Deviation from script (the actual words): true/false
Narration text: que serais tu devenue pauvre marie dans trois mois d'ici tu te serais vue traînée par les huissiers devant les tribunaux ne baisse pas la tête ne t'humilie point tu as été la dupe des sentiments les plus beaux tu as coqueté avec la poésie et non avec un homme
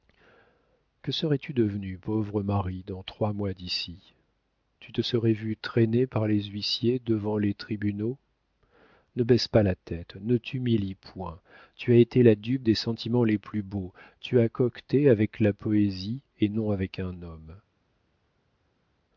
false